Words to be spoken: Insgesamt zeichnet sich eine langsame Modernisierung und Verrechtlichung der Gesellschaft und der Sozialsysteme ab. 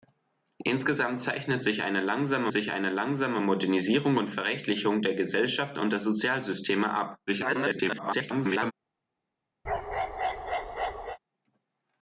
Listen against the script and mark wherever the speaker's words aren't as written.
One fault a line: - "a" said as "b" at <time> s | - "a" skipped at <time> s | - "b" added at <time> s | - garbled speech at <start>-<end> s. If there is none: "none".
- "sich eine langsame" added at 2.5 s
- garbled speech at 7.3-8.7 s